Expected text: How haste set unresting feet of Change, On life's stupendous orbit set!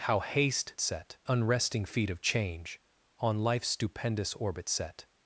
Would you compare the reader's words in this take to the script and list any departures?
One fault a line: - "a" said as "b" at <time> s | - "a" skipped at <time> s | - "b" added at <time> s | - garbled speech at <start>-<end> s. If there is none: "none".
none